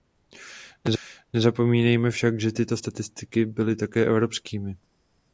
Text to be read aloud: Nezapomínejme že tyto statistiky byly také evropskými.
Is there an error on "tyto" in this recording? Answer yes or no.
no